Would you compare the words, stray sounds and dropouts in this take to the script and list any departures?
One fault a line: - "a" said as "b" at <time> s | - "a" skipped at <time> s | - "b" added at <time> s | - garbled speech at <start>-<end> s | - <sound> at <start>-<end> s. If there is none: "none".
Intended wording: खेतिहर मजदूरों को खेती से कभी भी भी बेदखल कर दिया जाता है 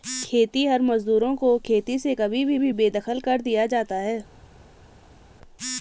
none